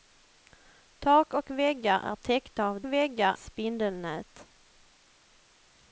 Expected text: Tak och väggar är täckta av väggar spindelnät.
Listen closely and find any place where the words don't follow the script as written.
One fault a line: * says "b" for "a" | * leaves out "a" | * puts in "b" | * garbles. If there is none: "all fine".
all fine